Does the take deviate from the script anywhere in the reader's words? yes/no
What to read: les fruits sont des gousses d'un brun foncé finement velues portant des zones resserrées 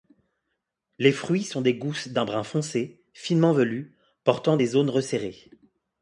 no